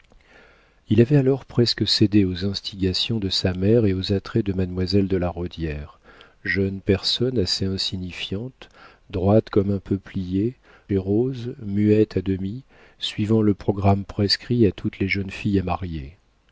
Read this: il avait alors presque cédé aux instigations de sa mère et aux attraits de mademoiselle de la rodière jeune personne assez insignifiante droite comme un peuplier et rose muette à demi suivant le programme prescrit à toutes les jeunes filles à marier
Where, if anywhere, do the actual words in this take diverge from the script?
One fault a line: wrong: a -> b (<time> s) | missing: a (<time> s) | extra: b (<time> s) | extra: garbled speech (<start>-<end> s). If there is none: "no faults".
no faults